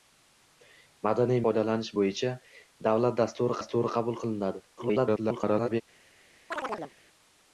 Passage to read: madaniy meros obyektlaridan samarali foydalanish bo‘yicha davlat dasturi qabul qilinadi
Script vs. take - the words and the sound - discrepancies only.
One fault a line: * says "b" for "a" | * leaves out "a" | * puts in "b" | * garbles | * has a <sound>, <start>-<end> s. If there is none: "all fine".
* leaves out "meros obyektlaridan samarali"
* puts in "dasturi"
* garbles
* has a chirp, 6.5-6.9 s